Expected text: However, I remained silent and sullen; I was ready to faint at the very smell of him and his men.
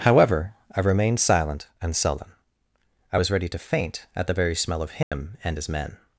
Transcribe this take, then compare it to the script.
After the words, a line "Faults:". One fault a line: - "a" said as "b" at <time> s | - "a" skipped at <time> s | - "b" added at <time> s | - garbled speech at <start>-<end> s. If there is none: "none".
However, I remained silent and sullen; I was ready to faint at the very smell of him and his men.
Faults:
none